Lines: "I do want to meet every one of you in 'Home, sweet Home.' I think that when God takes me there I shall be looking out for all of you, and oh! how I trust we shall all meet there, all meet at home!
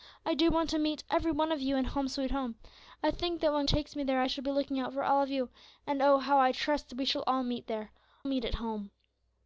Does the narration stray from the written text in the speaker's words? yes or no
yes